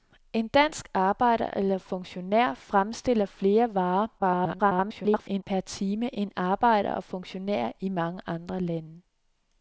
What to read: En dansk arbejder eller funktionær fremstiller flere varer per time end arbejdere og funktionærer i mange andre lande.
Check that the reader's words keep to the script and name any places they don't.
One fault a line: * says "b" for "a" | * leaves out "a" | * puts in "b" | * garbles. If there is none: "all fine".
* garbles